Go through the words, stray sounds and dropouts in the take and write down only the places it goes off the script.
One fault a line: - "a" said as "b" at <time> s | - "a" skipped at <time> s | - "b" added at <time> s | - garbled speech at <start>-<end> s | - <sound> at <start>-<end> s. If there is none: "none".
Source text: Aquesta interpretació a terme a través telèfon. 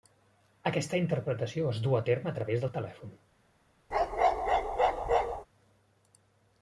- "es duu" added at 1.7 s
- "del" added at 2.6 s
- bark at 3.9-5.5 s